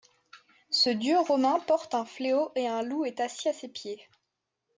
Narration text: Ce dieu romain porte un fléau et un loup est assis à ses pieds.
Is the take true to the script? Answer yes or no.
yes